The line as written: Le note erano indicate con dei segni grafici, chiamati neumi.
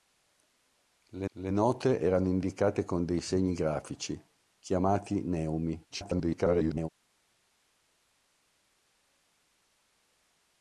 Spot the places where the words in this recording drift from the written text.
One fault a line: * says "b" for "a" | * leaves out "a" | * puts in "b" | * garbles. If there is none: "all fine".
* puts in "le"
* garbles